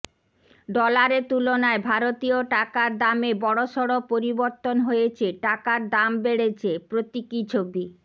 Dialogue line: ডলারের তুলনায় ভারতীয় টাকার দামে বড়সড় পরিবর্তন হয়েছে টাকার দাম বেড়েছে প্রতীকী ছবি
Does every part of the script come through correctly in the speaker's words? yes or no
yes